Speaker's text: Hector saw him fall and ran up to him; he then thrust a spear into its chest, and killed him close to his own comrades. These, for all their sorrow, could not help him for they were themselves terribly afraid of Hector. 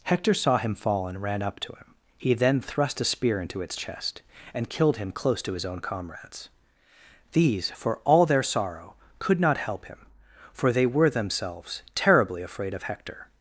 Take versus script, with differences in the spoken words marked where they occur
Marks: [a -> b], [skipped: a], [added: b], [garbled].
Hector saw him fall and ran up to him; he then thrust a spear into its chest, and killed him close to his own comrades. These, for all their sorrow, could not help him for they were themselves terribly afraid of Hector.